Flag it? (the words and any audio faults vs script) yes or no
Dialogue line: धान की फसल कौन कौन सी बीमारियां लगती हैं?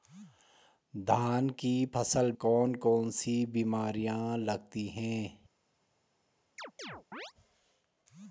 yes